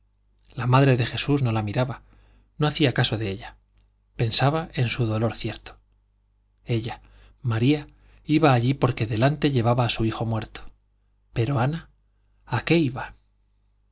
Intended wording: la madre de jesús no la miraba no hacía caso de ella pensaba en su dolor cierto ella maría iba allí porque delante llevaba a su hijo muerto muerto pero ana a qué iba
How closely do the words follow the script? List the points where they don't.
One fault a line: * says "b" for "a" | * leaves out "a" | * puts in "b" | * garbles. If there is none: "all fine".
* leaves out "muerto"